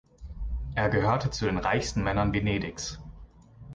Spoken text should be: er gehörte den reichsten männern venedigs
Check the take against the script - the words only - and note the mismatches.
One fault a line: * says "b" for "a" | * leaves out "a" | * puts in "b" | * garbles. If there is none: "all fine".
* puts in "zu"